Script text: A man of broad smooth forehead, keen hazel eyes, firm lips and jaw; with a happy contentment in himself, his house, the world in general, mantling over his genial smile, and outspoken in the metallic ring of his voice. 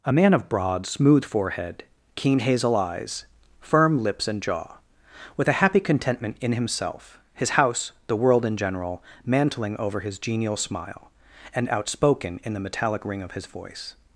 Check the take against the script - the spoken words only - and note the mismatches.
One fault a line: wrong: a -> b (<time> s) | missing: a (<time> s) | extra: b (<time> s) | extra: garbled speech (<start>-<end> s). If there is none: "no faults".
no faults